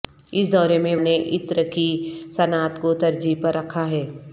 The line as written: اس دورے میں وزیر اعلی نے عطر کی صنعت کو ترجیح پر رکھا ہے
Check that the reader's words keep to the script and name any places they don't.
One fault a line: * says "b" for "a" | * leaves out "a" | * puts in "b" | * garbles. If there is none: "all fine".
* leaves out "وزیر اعلی"